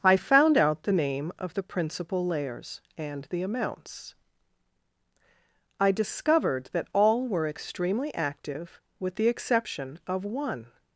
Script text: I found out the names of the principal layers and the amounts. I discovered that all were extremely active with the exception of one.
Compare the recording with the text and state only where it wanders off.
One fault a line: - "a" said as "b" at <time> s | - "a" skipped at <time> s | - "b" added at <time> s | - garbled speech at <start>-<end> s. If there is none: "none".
- "names" said as "name" at 0.9 s